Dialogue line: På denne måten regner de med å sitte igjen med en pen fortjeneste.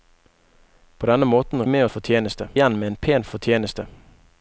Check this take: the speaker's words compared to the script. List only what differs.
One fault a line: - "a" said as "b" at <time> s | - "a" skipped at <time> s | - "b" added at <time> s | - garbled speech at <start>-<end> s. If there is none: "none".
- "regner de" skipped at 1.6 s
- "sitte" said as "fortjeneste" at 1.9 s